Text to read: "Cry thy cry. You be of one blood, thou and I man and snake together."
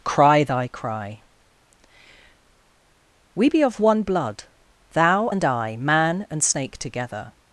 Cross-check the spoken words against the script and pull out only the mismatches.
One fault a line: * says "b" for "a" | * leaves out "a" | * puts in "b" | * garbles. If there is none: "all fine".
* says "We" for "You"